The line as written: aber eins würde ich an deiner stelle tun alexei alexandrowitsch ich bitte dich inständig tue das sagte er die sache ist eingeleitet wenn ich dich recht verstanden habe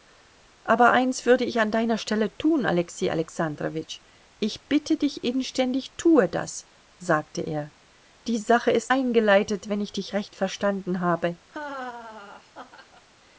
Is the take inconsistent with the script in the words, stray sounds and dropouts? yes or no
yes